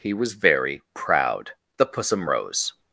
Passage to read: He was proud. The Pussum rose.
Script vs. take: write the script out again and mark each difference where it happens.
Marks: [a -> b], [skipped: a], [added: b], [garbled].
He was [added: very] proud. The Pussum rose.